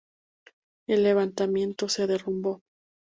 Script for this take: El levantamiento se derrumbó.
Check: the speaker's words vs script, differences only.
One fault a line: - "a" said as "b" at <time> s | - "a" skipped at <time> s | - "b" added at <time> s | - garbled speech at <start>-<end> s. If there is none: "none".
none